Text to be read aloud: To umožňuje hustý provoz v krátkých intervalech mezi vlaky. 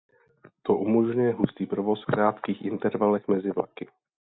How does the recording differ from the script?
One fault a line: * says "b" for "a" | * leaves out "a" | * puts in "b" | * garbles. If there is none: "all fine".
* leaves out "v"